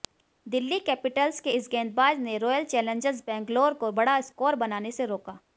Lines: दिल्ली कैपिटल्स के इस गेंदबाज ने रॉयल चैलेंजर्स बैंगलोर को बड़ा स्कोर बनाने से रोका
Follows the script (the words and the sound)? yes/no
yes